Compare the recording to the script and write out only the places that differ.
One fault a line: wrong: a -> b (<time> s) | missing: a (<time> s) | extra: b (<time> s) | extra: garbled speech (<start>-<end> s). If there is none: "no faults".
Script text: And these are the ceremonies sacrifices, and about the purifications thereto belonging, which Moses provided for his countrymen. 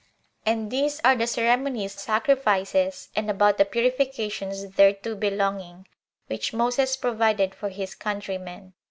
no faults